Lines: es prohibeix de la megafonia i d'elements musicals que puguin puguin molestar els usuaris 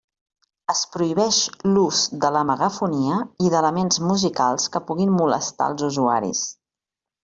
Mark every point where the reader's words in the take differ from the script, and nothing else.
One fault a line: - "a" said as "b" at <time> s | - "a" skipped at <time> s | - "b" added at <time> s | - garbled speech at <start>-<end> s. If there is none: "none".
- "l'ús" added at 1.7 s
- "puguin" skipped at 5.2 s